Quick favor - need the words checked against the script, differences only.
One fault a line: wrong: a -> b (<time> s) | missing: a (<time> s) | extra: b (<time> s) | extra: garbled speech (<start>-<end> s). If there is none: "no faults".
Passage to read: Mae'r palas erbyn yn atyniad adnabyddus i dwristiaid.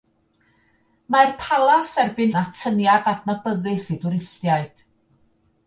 no faults